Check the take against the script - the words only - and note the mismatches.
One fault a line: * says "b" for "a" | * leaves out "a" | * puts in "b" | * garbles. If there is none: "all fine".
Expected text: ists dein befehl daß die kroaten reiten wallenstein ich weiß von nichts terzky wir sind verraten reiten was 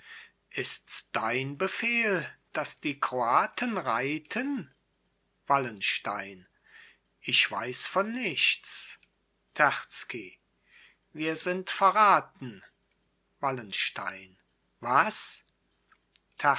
* says "wallenstein" for "reiten"